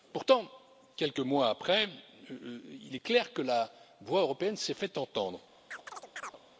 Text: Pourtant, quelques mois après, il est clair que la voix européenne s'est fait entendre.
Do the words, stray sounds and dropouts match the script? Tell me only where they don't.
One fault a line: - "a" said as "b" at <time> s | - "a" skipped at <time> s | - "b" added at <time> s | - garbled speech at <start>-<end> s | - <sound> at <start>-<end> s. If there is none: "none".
- chirp at 5.7-6.4 s